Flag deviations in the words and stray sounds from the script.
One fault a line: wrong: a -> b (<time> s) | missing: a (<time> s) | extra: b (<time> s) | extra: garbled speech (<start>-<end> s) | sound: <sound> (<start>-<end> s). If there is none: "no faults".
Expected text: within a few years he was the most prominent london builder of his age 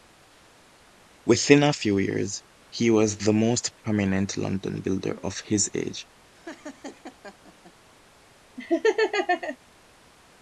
sound: laugh (6.3-7.7 s)
sound: laugh (8.6-9.6 s)